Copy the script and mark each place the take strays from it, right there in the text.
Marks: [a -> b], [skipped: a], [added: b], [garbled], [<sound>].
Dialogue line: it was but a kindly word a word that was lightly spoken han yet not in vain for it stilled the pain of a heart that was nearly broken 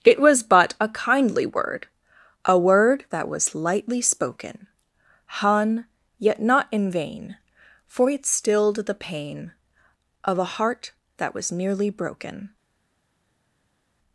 it was but a kindly word a word that was lightly spoken han yet not in vain for it stilled the pain of a heart that was nearly broken